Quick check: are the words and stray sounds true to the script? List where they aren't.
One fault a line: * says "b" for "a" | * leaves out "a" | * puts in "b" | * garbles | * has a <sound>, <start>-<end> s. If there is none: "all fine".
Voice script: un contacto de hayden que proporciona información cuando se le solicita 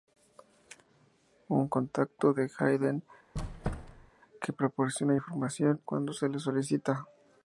* has a squeak, 3.3-4.1 s